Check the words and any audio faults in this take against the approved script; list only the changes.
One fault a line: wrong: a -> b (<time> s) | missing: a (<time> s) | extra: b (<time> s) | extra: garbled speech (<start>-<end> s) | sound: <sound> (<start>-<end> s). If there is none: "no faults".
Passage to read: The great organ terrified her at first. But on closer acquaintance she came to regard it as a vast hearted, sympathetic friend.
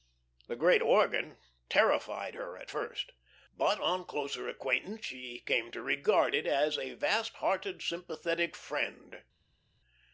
no faults